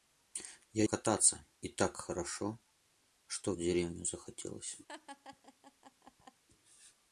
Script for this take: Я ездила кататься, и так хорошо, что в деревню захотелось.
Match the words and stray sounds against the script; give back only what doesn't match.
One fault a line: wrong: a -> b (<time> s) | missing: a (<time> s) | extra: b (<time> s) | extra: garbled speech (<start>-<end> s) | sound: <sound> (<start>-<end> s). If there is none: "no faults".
missing: ездила (0.8 s)
sound: laugh (4.9-6.4 s)